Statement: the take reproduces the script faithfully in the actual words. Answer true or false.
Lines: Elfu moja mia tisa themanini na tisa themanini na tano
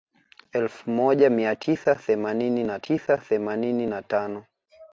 true